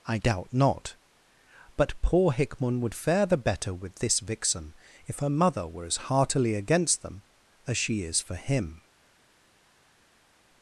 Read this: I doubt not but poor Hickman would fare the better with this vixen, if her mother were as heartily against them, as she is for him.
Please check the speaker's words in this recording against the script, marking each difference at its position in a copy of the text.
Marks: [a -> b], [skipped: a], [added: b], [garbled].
I doubt not but poor Hickman would fare the better with this vixen, if her mother were as heartily against them, as she is for him.